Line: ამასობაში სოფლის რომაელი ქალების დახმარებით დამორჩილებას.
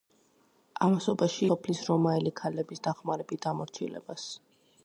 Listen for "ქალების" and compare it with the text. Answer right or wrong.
right